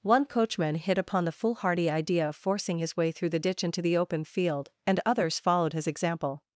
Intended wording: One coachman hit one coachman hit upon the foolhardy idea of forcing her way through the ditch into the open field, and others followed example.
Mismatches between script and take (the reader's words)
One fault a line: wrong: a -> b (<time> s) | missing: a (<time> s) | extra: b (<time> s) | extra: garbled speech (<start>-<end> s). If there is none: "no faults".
missing: one coachman hit (1.0 s)
wrong: her -> his (2.8 s)
extra: his (5.7 s)